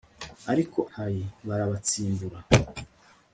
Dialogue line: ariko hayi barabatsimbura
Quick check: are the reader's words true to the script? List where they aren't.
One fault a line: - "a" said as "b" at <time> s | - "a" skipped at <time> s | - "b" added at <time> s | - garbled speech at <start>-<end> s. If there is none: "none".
none